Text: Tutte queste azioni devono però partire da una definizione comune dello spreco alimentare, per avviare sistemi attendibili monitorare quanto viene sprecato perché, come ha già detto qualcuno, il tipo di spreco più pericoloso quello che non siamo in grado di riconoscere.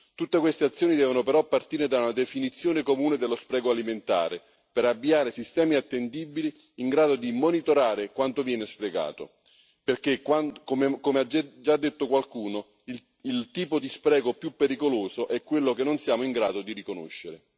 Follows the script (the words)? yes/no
no